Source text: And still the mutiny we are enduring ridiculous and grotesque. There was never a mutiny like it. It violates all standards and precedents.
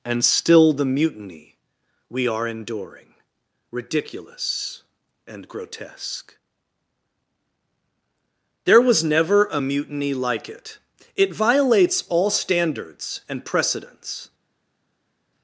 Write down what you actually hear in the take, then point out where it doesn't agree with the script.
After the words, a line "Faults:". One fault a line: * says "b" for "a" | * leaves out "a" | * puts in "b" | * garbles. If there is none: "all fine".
And still the mutiny we are enduring ridiculous and grotesque. There was never a mutiny like it. It violates all standards and precedents.
Faults:
all fine